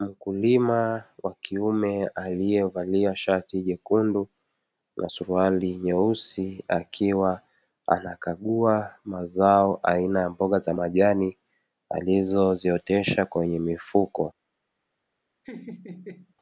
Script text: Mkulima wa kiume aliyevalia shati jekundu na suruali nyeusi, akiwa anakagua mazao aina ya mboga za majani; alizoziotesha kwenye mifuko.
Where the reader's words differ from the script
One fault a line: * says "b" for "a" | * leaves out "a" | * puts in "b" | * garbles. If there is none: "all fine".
all fine